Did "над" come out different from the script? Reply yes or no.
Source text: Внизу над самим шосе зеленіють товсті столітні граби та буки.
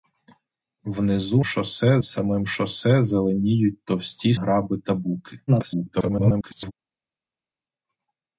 yes